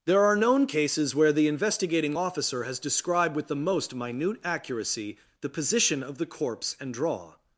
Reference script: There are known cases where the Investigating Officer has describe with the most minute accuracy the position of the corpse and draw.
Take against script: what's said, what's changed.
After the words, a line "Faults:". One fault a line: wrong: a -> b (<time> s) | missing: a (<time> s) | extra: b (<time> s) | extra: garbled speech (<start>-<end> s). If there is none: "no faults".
There are known cases where the Investigating Officer has described with the most minute accuracy the position of the corpse and draw.
Faults:
wrong: describe -> described (2.8 s)